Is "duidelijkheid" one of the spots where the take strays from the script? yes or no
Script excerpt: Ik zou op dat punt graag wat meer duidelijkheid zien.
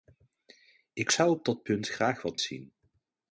yes